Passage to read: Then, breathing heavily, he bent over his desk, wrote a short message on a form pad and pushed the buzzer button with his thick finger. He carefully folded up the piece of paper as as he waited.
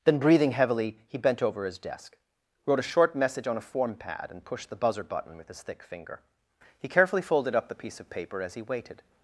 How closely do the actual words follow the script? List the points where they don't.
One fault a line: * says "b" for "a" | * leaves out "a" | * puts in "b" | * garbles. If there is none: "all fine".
* leaves out "as"